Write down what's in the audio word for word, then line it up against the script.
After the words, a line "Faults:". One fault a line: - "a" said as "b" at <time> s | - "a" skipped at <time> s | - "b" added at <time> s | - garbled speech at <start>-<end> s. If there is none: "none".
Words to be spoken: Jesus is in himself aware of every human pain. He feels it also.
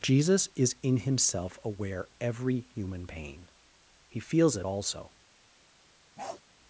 Jesus is in himself aware every human pain. He feels it also.
Faults:
- "of" skipped at 2.1 s